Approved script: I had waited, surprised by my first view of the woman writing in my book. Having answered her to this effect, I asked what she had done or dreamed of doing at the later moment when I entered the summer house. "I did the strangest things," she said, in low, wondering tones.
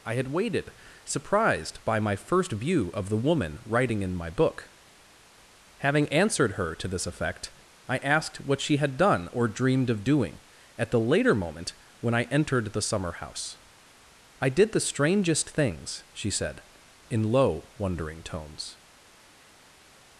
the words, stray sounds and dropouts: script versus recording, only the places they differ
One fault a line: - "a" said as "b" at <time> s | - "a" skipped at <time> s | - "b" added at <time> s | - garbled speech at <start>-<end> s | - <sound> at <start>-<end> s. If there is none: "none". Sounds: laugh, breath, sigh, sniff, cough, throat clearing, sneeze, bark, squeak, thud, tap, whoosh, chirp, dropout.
none